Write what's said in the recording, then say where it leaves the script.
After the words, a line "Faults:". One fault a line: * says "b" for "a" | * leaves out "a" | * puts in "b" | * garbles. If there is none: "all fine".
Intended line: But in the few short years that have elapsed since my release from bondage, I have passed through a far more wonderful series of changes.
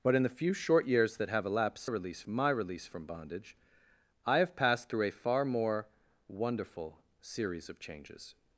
But in the few short years that have elapsed release my release from bondage, I have passed through a far more wonderful series of changes.
Faults:
* says "release" for "since"